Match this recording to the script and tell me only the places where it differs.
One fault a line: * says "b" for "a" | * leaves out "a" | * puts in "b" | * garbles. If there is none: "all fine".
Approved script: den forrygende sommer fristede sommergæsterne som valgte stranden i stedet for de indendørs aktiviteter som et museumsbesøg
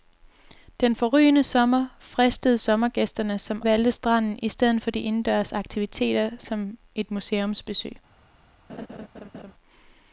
all fine